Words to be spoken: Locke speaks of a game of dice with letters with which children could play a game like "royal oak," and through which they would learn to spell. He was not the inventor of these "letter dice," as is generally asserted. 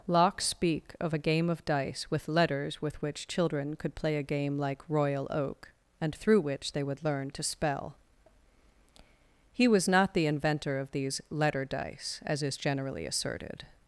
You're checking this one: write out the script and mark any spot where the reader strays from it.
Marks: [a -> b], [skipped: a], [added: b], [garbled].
Locke [speaks -> speak] of a game of dice with letters with which children could play a game like "royal oak," and through which they would learn to spell. He was not the inventor of these "letter dice," as is generally asserted.